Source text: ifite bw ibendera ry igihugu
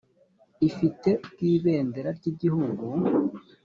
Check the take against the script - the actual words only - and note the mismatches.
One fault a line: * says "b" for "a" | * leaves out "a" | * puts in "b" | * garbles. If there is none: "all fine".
all fine